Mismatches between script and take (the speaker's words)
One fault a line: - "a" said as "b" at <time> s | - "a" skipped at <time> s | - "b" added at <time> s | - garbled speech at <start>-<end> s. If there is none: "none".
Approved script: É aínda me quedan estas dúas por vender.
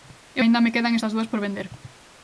none